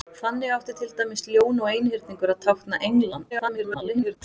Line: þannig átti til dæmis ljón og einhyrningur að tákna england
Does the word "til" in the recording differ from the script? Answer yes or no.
no